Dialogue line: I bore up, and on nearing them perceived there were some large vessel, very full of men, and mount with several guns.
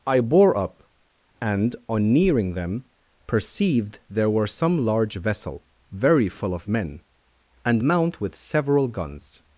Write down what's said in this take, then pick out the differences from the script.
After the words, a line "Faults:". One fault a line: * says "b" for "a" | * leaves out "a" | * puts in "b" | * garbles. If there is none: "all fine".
I bore up, and on nearing them perceived there were some large vessel, very full of men, and mount with several guns.
Faults:
all fine